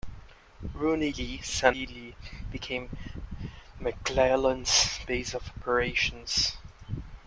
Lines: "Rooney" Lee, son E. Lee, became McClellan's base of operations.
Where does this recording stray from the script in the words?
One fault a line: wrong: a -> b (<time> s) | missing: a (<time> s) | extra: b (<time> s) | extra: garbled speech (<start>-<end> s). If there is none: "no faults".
no faults